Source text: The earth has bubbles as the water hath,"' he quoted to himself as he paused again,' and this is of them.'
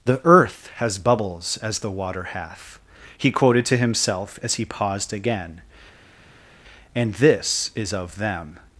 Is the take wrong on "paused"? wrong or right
right